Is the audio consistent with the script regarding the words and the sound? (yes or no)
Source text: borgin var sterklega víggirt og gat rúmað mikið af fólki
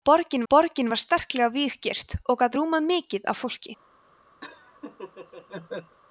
no